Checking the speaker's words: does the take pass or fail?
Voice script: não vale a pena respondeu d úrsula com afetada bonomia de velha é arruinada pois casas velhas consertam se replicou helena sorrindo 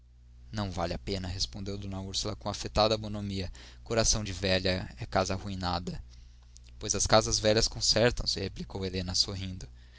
fail